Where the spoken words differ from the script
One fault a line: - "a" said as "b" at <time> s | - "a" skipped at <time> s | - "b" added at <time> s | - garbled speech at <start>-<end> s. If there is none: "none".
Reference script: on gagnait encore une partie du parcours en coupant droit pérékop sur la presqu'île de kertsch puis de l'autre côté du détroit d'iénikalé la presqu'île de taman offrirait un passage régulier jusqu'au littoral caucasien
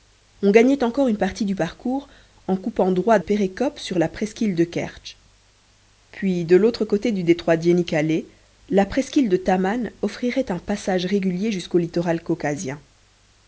none